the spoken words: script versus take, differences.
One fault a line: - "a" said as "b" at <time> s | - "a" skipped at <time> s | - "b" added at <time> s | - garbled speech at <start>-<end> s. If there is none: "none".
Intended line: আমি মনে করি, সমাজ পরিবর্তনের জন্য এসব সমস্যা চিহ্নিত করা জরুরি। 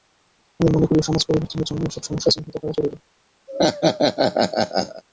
none